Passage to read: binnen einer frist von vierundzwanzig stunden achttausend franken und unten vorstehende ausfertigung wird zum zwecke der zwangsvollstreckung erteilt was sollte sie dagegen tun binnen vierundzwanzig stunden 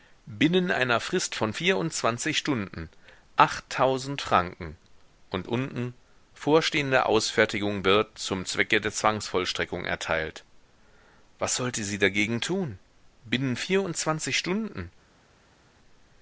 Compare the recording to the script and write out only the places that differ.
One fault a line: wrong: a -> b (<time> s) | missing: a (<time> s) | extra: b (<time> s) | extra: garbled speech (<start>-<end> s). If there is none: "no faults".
no faults